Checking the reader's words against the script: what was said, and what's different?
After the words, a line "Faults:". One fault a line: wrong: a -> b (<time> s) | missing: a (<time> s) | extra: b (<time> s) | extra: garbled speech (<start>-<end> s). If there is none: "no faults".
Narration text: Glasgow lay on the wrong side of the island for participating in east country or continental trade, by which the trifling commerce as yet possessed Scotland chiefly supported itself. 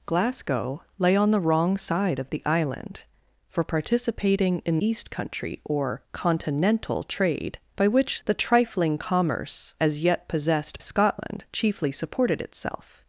Glasgow lay on the wrong side of the island for participating in east country or continental trade, by which the trifling commerce as yet possessed Scotland chiefly supported itself.
Faults:
no faults